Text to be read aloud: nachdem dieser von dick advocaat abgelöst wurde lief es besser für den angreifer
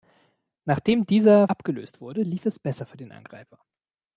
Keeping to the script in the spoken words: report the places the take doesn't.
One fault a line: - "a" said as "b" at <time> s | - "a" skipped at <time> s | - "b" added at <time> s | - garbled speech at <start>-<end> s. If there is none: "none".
- "von dick advocaat" skipped at 1.5 s